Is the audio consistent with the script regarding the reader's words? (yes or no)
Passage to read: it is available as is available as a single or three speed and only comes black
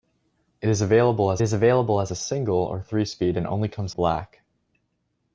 yes